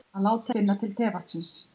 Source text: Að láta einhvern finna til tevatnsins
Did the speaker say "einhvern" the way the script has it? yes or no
no